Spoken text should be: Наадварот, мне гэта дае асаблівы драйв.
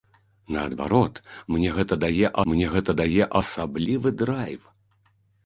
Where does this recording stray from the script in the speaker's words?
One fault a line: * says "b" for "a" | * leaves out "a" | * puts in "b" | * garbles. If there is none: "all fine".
* puts in "мне гэта дае"